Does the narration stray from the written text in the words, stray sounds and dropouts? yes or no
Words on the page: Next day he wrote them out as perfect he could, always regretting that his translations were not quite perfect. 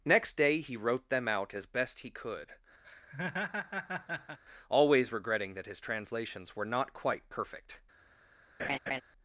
yes